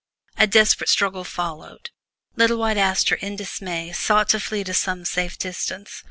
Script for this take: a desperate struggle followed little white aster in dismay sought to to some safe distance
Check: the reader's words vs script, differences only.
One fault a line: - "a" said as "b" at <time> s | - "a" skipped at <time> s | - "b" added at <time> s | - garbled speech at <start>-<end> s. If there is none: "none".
- "flee" added at 4.4 s